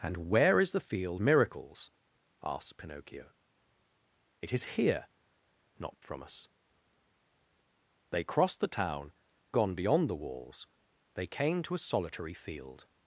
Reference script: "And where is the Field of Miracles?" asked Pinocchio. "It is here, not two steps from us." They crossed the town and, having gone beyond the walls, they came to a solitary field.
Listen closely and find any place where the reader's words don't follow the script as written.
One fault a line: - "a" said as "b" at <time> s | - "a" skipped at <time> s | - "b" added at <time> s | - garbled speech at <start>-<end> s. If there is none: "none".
- "of" skipped at 1.2 s
- "two steps" skipped at 6.0 s
- "and having" skipped at 9.1 s